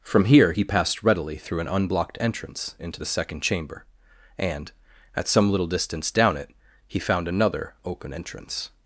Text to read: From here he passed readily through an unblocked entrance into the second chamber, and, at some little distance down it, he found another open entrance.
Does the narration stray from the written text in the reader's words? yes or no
no